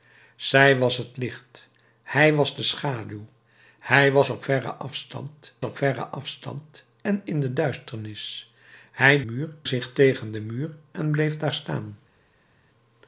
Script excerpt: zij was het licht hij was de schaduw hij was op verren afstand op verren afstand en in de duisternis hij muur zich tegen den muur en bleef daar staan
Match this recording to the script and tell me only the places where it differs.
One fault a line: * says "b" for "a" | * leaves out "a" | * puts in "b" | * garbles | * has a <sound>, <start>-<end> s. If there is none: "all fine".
all fine